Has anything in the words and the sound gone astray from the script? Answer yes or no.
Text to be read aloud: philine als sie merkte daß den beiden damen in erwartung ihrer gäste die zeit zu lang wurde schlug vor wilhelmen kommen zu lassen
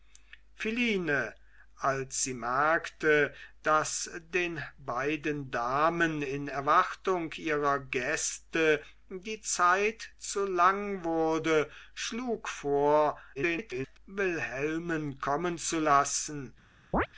yes